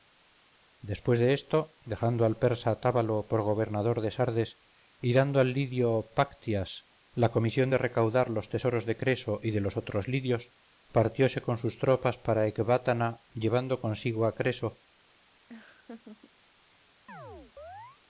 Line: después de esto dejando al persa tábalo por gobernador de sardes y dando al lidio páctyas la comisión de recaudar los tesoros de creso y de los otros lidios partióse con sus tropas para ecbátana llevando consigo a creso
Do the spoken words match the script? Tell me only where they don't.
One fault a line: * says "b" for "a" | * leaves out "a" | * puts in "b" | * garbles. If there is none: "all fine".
all fine